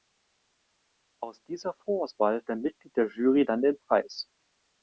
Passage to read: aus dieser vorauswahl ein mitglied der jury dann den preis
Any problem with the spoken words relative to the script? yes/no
no